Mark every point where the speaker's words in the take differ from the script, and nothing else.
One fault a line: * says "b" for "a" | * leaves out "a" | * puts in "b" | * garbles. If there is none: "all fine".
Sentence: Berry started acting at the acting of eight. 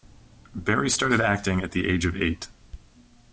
* says "age" for "acting"